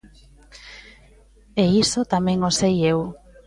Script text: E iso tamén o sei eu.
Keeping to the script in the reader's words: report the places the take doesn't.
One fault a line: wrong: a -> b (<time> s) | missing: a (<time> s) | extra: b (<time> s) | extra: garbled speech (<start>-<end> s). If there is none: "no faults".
no faults